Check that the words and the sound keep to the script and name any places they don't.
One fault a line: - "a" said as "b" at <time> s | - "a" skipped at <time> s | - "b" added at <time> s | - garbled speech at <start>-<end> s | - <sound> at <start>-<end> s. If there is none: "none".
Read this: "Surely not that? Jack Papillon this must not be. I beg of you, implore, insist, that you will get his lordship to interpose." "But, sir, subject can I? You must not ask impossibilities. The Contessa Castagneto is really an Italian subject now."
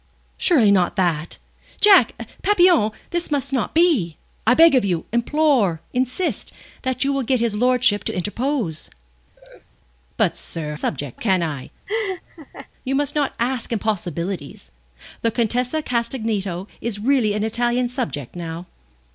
- laugh at 9.4-9.7 s
- laugh at 11.9-12.7 s